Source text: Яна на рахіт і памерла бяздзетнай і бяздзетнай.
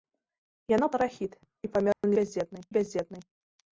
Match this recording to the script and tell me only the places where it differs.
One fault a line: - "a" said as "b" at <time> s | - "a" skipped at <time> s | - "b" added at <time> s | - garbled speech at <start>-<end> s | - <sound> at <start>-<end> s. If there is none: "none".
- dropout at 1.9-2.0 s